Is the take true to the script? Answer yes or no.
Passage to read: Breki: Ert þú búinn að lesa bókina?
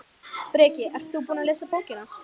yes